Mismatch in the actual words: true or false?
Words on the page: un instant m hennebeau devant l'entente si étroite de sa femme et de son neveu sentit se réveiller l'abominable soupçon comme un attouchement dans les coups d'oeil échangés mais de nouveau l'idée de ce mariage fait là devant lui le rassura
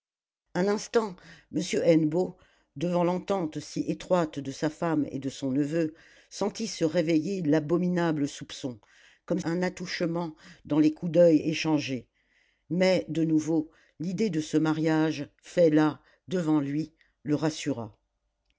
false